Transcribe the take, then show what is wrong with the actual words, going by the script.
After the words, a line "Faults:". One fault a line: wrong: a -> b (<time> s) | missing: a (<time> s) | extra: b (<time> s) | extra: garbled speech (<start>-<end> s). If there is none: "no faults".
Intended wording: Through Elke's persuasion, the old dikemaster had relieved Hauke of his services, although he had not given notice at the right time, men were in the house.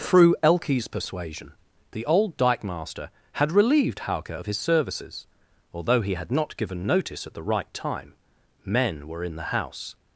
Through Elke's persuasion, the old dikemaster had relieved Hauke of his services, although he had not given notice at the right time, men were in the house.
Faults:
no faults